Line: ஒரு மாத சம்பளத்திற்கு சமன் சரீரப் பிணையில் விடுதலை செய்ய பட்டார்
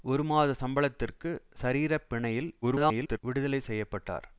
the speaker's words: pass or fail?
fail